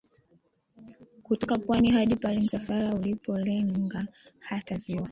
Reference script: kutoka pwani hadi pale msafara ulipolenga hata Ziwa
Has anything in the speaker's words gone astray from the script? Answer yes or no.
no